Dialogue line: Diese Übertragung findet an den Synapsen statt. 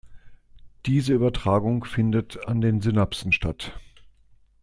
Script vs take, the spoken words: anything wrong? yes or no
no